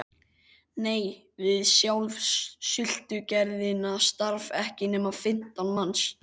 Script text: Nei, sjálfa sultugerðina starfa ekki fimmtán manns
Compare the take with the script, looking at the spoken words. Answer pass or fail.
fail